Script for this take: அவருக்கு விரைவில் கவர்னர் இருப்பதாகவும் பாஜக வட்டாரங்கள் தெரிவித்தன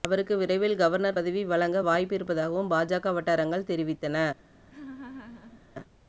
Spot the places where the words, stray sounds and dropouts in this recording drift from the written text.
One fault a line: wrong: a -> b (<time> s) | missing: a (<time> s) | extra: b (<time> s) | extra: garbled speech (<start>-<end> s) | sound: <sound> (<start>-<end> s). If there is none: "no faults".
extra: பதவி வழங்க வாய்ப்பு (1.1 s)
sound: laugh (4.7-5.6 s)